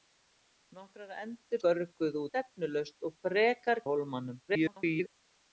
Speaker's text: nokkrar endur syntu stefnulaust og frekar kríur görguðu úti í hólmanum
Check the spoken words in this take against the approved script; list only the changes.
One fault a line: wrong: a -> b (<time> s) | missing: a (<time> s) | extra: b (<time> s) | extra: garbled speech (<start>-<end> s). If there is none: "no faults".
wrong: syntu -> görguðu (1.7 s)
missing: kríur görguðu úti (3.8 s)
extra: garbled speech (4.5-5.1 s)